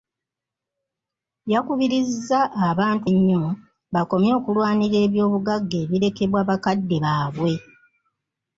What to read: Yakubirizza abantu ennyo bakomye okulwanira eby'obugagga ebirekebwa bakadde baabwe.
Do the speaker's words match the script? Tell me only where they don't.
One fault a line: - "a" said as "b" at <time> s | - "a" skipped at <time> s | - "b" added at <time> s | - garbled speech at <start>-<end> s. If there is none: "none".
none